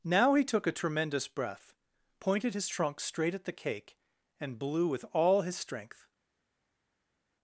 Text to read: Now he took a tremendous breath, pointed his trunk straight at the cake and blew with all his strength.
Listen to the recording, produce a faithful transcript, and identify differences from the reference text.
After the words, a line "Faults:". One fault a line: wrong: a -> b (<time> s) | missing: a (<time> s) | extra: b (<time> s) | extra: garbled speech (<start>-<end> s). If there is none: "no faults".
Now he took a tremendous breath, pointed his trunk straight at the cake and blew with all his strength.
Faults:
no faults